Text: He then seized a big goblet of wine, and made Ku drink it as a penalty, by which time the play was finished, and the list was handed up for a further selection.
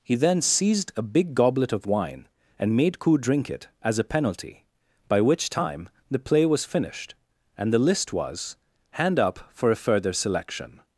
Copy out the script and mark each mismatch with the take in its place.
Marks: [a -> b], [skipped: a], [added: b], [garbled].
He then seized a big goblet of wine, and made Ku drink it as a penalty, by which time the play was finished, and the list was [handed -> hand] up for a further selection.